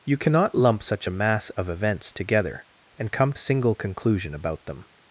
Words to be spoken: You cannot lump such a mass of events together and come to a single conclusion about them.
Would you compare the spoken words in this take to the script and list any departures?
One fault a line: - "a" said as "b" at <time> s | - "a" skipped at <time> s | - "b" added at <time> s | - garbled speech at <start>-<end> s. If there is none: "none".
- "to" skipped at 3.3 s